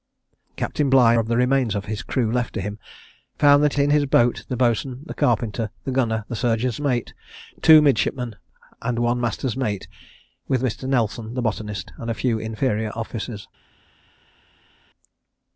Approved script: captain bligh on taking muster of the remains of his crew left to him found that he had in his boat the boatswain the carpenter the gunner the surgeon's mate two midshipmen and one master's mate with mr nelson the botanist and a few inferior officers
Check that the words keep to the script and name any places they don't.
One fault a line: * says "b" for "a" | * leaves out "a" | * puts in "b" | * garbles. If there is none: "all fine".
* leaves out "on taking muster"
* leaves out "he had"